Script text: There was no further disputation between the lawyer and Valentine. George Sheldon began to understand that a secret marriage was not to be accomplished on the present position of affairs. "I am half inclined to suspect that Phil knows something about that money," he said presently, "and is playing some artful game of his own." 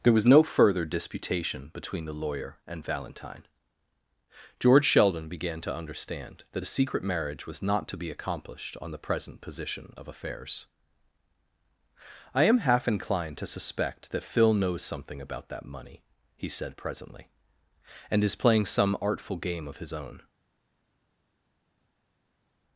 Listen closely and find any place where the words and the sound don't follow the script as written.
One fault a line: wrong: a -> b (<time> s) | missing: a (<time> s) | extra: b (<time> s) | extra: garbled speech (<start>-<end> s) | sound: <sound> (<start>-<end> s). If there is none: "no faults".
no faults